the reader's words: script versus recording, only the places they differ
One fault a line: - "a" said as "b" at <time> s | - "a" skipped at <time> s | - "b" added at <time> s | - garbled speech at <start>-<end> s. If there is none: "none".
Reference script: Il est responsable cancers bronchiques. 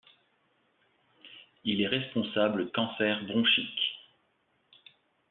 none